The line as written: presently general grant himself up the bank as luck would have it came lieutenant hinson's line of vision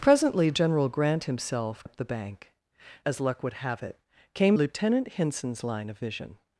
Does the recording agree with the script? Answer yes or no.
yes